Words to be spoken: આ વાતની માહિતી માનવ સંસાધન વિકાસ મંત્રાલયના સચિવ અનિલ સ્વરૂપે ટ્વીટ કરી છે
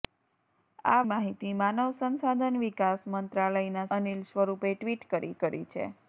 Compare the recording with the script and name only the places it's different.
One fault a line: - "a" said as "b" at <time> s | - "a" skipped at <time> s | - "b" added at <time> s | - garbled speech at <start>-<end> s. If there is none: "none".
- "વાતની" skipped at 1.0 s
- "સચિવ" skipped at 3.9 s
- "કરી" added at 5.4 s